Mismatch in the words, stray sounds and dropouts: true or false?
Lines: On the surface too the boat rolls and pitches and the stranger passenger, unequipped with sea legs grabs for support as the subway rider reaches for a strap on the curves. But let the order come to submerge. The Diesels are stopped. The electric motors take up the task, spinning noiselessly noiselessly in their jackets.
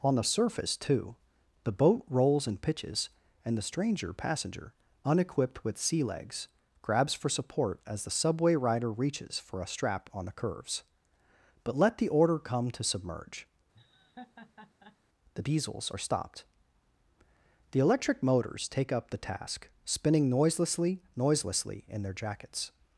true